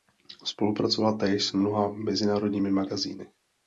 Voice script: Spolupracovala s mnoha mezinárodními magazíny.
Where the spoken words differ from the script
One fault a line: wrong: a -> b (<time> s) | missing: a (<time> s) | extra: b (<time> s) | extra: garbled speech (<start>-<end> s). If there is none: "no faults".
extra: též (1.2 s)